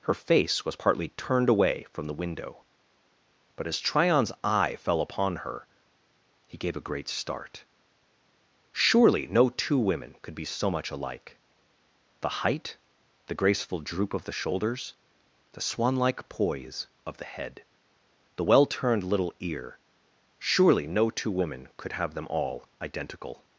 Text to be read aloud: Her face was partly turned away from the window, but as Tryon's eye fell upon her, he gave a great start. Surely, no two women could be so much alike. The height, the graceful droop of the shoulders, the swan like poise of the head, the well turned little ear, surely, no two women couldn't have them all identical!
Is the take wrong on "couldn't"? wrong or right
wrong